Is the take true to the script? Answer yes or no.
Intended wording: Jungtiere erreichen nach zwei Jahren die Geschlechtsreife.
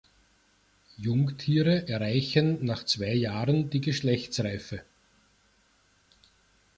yes